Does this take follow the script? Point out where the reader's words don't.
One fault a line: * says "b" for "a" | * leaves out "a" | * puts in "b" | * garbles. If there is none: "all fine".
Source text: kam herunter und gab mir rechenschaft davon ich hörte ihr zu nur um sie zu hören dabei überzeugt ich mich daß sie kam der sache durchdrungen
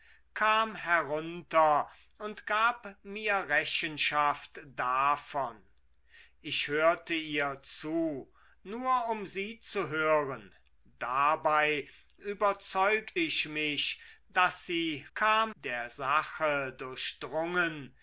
all fine